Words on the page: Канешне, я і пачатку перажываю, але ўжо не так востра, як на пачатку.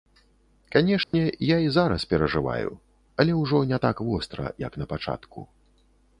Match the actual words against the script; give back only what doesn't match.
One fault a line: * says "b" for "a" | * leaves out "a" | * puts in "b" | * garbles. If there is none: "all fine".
* says "зараз" for "пачатку"